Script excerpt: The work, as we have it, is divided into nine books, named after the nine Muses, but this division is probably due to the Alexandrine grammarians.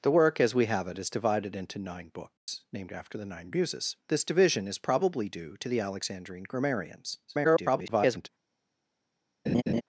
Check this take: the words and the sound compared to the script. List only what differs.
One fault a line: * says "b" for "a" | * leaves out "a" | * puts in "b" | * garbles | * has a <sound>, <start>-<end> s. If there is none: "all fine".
* has a dropout, 2.4-2.5 s
* leaves out "but"
* garbles
* has a laugh, 9.5-9.8 s